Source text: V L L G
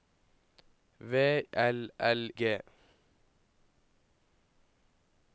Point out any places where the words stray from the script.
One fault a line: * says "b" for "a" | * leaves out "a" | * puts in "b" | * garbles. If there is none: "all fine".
all fine